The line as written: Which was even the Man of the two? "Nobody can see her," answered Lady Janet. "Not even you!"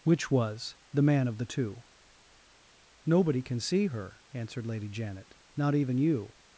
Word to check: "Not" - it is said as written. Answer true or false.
true